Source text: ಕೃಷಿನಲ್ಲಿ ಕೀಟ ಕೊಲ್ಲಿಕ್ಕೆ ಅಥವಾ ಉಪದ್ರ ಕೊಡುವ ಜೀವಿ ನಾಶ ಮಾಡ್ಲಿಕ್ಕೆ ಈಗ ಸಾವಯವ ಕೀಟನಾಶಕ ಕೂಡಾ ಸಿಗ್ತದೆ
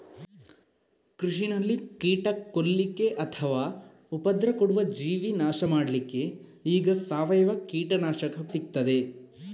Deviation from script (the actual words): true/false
true